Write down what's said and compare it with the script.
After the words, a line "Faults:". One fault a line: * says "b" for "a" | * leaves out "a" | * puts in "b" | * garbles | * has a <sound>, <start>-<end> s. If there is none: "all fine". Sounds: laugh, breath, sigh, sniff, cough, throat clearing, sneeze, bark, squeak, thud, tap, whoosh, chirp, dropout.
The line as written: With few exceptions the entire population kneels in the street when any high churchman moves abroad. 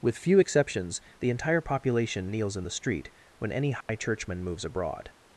With few exceptions the entire population kneels in the street when any high churchman moves abroad.
Faults:
* has a dropout, 3.8-3.9 s